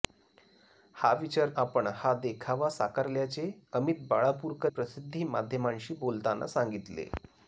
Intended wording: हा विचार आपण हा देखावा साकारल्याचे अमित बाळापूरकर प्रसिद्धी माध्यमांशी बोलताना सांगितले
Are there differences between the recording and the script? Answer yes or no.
no